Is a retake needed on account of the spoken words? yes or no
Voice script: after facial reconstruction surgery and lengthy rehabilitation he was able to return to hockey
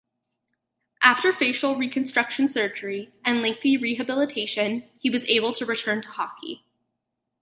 no